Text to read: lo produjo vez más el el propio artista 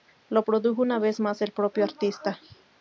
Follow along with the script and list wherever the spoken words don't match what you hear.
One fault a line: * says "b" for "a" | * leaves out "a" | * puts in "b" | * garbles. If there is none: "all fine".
* puts in "una"
* leaves out "el"